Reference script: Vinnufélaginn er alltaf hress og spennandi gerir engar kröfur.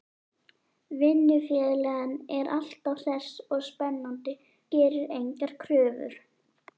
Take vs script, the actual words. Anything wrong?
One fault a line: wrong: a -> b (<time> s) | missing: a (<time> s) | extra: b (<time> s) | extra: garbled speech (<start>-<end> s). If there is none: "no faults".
no faults